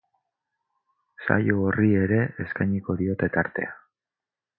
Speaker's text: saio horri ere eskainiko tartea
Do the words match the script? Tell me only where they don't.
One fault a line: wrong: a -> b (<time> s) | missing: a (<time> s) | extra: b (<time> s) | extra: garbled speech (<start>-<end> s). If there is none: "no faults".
extra: diote (3.0 s)